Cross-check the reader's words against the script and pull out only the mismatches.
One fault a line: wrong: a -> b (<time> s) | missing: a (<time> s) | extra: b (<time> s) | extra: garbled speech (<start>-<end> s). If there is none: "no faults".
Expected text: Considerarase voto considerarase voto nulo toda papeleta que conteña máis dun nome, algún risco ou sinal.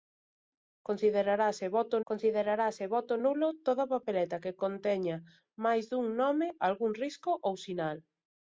no faults